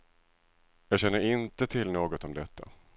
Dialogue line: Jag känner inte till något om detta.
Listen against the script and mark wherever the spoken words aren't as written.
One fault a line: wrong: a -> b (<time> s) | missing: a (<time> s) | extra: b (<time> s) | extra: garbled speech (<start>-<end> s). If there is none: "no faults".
no faults